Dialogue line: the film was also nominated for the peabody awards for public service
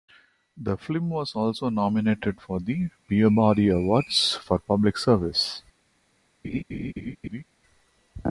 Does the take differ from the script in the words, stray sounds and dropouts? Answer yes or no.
yes